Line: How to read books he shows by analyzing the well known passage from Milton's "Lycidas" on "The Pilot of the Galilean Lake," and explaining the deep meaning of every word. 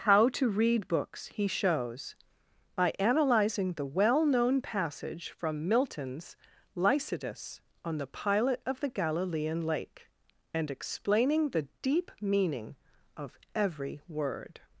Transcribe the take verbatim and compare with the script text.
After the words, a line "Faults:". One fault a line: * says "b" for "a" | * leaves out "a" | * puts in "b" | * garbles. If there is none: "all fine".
How to read books he shows by analyzing the well known passage from Milton's "Lycidas" on "The Pilot of the Galilean Lake," and explaining the deep meaning of every word.
Faults:
all fine